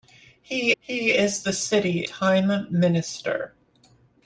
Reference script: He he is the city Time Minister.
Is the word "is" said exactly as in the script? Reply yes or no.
yes